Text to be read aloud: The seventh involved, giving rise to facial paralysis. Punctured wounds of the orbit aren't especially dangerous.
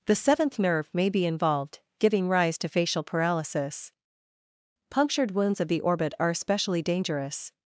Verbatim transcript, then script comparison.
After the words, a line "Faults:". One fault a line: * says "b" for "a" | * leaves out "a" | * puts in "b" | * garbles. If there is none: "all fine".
The seventh nerve may be involved, giving rise to facial paralysis. Punctured wounds of the orbit are especially dangerous.
Faults:
* puts in "nerve may be"
* says "are" for "aren't"